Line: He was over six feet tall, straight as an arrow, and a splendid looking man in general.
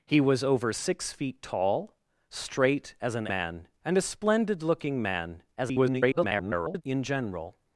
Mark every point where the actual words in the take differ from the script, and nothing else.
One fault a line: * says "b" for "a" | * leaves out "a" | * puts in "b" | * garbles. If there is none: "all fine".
* says "man" for "arrow"
* garbles